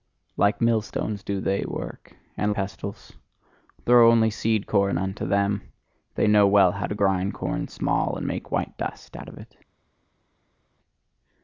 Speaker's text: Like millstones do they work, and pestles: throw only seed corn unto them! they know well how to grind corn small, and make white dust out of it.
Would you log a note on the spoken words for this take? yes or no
no